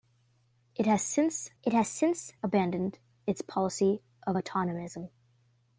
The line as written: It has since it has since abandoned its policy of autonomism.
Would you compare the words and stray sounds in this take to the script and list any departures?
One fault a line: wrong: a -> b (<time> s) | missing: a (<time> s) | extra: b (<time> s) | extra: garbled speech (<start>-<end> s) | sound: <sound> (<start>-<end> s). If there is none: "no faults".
no faults